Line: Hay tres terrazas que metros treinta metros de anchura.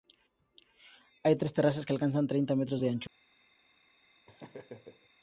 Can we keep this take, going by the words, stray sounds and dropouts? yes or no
no